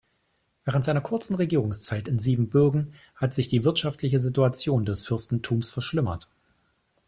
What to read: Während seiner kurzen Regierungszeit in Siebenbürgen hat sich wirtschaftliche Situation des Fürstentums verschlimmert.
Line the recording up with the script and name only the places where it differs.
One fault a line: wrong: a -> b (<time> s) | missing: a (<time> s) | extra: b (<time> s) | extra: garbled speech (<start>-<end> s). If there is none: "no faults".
extra: die (3.5 s)